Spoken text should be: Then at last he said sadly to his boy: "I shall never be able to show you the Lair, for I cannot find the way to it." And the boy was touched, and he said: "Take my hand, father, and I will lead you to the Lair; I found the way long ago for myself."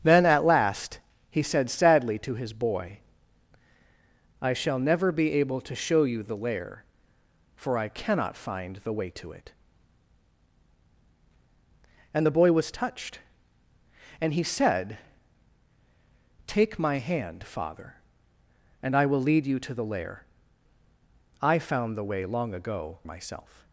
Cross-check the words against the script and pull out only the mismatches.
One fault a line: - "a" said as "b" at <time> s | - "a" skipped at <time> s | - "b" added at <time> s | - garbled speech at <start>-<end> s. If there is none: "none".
- "for" skipped at 23.0 s